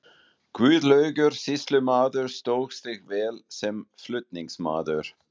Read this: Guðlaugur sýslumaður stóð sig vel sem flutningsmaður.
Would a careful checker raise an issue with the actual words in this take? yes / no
no